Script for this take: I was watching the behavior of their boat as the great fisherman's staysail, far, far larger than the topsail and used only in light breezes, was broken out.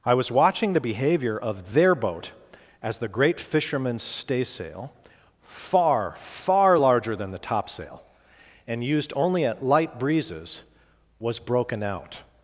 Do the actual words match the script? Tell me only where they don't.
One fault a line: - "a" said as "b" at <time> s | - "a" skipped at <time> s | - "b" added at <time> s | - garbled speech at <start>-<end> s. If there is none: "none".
- "in" said as "at" at 9.4 s